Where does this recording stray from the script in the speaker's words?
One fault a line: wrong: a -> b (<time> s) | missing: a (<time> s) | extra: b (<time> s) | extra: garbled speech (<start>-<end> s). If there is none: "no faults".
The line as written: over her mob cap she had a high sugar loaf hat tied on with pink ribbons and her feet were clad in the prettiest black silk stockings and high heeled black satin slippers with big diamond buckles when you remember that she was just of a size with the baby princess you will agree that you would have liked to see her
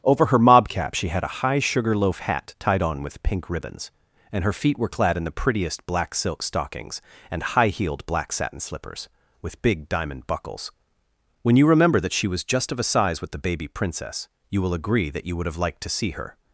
no faults